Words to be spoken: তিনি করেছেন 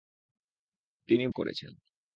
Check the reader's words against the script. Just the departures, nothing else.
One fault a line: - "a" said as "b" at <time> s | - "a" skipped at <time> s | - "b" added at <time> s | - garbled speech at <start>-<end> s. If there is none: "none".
none